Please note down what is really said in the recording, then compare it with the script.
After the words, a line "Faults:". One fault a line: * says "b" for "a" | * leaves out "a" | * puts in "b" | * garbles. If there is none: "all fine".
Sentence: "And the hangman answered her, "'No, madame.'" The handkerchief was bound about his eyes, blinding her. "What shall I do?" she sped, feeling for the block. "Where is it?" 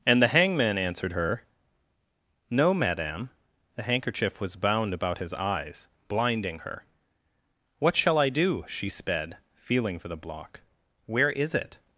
"And the hangman answered her, "'No, madame.'" The handkerchief was bound about his eyes, blinding her. "What shall I do?" she sped, feeling for the block. "Where is it?"
Faults:
all fine